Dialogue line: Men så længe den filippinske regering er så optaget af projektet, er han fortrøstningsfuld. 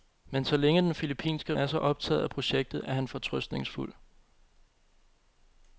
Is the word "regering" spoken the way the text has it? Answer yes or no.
no